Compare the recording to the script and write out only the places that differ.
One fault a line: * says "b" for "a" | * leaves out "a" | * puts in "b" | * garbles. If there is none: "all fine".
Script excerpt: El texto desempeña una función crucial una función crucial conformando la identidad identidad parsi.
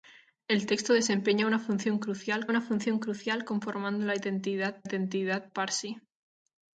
all fine